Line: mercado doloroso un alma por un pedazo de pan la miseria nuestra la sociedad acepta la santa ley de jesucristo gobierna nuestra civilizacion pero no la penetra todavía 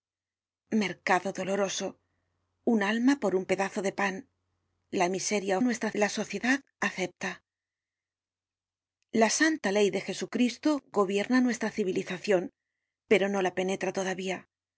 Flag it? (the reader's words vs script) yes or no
no